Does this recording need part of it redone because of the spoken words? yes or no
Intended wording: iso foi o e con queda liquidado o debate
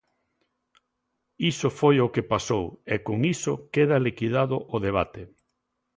yes